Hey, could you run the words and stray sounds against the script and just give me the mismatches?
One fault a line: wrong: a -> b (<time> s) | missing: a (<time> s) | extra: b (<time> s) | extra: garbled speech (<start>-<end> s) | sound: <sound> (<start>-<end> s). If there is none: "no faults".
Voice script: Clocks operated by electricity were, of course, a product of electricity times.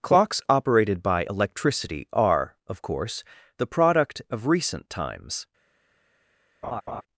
wrong: were -> are (2.1 s)
wrong: a -> the (3.6 s)
wrong: electricity -> recent (4.5 s)
sound: laugh (6.6-7.0 s)